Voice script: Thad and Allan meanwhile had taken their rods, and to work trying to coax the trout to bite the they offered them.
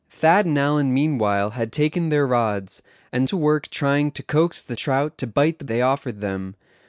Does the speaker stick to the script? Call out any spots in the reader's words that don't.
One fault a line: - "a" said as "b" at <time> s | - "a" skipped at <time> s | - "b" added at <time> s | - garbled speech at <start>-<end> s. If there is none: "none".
none